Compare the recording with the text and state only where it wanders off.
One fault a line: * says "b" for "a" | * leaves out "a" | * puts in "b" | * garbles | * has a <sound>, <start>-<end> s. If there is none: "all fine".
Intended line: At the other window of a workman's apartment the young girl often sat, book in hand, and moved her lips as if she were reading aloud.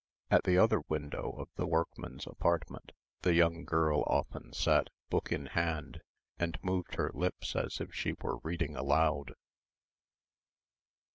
* says "the" for "a"